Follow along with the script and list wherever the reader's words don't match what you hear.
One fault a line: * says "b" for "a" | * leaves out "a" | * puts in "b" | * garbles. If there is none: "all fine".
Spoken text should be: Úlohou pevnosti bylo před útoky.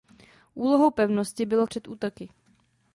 all fine